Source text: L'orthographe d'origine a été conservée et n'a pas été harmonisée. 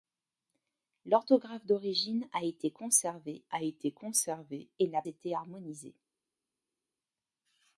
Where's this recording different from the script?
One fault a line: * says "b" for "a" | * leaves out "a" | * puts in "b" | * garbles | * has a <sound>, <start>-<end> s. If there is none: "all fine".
* puts in "a été conservée"
* leaves out "pas"